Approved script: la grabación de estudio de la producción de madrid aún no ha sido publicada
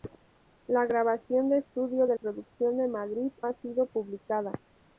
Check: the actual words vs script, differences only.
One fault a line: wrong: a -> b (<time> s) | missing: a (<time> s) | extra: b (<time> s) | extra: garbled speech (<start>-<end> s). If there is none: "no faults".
missing: la (2.1 s)
missing: aún no (3.3 s)